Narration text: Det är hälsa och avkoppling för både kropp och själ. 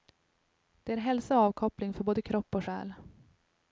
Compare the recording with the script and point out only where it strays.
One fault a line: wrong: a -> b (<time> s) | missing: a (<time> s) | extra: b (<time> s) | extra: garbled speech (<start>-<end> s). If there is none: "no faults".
no faults